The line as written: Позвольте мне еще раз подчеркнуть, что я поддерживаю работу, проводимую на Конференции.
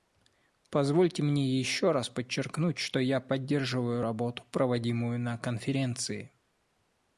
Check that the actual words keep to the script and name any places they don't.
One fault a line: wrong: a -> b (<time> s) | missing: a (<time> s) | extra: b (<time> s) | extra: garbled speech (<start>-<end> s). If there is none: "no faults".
no faults